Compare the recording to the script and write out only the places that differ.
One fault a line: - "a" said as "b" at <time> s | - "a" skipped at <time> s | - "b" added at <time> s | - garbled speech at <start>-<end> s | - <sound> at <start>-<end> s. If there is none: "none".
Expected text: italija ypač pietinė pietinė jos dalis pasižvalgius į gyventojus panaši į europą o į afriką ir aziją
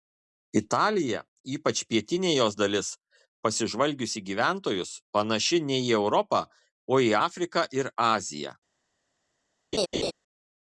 - "pietinė" skipped at 2.3 s
- "ne" added at 5.7 s
- laugh at 9.7-10.1 s